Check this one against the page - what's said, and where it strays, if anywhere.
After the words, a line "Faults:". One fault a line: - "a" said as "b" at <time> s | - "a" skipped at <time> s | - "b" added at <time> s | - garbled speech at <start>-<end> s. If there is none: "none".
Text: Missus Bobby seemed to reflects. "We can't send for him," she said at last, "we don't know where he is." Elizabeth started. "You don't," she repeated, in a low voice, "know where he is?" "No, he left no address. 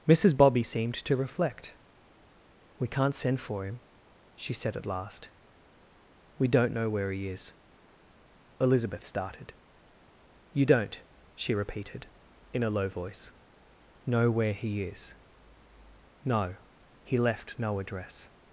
Missus Bobby seemed to reflect. "We can't send for him," she said at last, "we don't know where he is." Elizabeth started. "You don't," she repeated, in a low voice, "know where he is?" "No, he left no address.
Faults:
- "reflects" said as "reflect" at 1.1 s